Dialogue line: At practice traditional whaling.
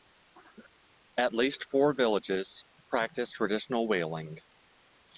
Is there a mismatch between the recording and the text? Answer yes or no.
yes